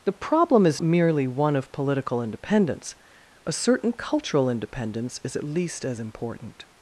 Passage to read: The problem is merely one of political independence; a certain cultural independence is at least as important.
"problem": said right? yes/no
yes